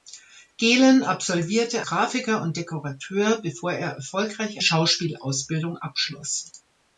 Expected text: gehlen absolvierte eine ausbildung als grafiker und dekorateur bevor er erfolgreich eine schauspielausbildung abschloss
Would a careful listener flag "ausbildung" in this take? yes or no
yes